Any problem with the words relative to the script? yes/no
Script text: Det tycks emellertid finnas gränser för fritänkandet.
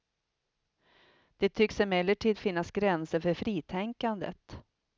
no